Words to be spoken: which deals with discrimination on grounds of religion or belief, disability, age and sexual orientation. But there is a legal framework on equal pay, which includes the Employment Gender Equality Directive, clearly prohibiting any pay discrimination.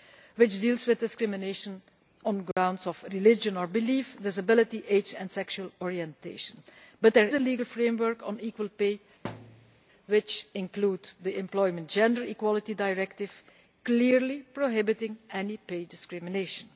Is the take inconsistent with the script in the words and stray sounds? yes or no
yes